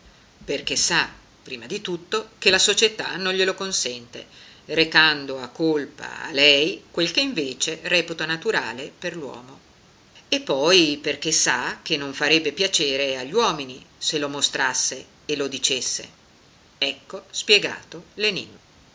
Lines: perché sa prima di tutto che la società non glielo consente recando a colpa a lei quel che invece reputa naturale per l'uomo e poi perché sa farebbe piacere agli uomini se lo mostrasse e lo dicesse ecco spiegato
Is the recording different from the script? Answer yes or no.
yes